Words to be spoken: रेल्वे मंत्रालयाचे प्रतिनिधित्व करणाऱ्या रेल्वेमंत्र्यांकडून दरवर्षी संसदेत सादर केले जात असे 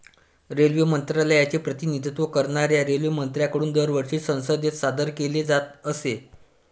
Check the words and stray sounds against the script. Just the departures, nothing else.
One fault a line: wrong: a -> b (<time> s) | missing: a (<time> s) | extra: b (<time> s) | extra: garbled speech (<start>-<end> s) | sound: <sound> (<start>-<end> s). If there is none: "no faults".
no faults